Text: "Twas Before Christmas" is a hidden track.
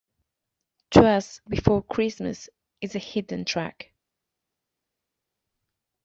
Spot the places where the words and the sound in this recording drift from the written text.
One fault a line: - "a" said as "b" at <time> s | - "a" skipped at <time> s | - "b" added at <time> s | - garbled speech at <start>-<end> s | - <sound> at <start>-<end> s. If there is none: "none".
none